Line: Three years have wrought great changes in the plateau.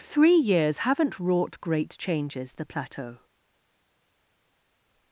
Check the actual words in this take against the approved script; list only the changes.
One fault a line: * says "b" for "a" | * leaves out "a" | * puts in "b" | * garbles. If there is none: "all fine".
* says "haven't" for "have"
* leaves out "in"